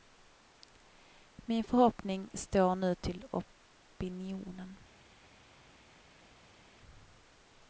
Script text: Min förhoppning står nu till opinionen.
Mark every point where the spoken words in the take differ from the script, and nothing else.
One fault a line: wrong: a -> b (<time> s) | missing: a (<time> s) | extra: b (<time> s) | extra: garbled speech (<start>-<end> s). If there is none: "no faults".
no faults